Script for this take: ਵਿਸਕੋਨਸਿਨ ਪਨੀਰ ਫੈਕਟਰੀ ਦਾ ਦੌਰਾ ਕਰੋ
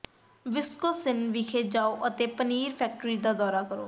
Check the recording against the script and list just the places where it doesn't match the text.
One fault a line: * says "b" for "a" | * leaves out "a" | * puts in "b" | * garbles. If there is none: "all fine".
* puts in "ਵਿਖੇ ਜਾਓ ਅਤੇ"